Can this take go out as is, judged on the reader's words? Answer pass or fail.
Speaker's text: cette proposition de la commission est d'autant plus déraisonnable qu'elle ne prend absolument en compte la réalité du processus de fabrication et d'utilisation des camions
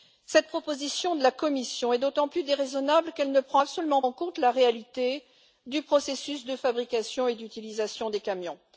pass